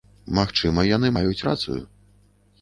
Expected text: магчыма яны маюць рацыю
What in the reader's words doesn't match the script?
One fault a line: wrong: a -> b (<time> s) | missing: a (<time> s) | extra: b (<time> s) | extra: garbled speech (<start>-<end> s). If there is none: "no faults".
no faults